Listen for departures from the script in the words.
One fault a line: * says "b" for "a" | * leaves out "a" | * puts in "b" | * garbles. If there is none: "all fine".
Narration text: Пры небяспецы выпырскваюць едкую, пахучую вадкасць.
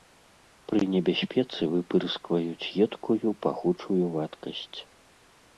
all fine